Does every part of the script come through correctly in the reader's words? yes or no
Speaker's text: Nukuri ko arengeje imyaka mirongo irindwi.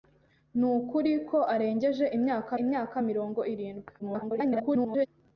no